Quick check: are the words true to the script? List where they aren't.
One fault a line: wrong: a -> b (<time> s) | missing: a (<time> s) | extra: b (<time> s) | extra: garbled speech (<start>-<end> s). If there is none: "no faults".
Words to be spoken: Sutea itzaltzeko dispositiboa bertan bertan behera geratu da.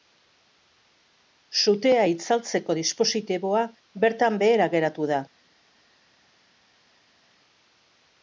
missing: bertan (4.4 s)